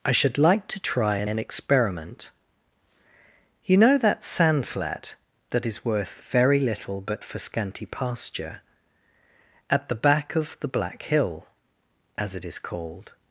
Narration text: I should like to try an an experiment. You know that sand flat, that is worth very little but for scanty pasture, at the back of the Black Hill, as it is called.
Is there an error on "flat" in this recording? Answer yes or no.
no